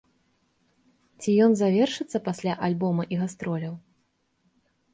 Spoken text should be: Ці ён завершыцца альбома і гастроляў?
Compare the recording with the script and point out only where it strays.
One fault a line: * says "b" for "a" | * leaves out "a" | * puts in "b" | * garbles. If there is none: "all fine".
* puts in "пасля"